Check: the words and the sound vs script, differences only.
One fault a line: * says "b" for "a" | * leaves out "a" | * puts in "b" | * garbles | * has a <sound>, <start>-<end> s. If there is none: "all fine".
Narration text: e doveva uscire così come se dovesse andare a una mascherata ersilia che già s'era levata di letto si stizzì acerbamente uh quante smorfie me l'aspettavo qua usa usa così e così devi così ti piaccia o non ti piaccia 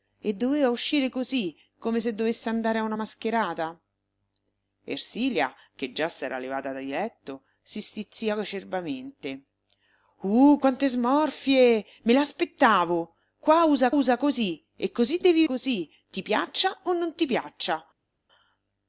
all fine